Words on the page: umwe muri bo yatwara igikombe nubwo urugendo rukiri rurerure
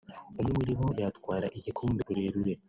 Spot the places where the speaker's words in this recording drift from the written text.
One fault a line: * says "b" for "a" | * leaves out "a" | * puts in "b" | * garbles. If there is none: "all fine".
* leaves out "nubwo urugendo rukiri"